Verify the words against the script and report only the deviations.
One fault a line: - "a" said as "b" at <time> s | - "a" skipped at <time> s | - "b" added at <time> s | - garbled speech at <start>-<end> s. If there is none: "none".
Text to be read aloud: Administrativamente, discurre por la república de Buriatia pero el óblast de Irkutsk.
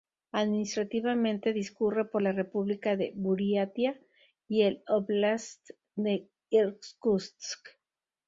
- "pero" said as "y" at 4.5 s